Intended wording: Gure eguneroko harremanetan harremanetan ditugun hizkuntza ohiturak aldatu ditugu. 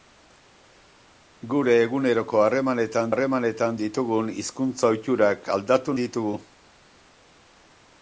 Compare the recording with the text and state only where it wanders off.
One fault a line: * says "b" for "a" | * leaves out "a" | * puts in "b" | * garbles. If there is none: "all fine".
all fine